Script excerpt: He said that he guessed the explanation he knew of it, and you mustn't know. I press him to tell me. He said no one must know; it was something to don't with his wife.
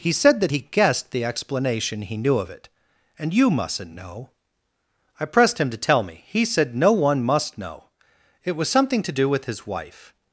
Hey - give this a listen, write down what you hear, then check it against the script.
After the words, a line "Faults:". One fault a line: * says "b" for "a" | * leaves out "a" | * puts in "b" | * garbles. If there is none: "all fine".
He said that he guessed the explanation he knew of it, and you mustn't know. I pressed him to tell me. He said no one must know; it was something to do with his wife.
Faults:
* says "pressed" for "press"
* says "do" for "don't"